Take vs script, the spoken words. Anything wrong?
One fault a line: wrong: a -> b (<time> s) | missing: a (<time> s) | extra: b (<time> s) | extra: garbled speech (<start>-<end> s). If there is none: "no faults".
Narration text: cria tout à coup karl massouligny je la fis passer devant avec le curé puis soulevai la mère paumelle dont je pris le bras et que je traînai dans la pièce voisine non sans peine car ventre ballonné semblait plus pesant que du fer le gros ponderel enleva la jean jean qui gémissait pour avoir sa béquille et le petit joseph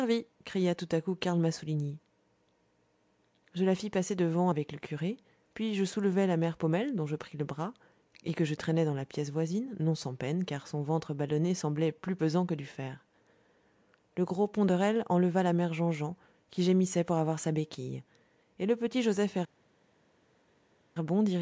extra: je (5.7 s)
extra: son (10.7 s)
extra: mère (15.5 s)